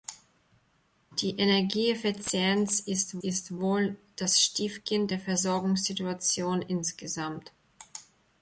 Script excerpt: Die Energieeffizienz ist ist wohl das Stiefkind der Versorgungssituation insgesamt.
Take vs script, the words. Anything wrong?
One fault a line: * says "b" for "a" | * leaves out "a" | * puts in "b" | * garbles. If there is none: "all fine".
all fine